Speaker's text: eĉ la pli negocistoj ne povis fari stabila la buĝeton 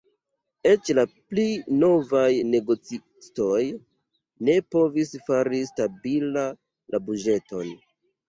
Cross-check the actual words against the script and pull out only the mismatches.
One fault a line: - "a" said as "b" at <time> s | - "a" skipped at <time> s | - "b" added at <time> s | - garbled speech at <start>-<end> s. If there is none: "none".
- "novaj" added at 1.8 s